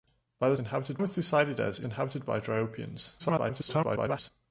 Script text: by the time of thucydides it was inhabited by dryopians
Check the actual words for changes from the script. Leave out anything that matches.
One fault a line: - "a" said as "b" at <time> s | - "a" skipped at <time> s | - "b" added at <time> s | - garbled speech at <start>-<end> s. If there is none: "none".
- "time" said as "inhabited" at 0.6 s
- "was" skipped at 1.9 s
- garbled speech at 3.2-4.3 s